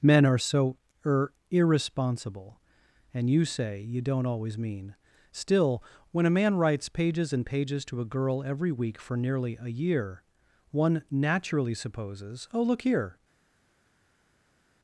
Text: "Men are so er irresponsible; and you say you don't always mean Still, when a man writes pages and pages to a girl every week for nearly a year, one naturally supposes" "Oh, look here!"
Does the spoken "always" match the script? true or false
true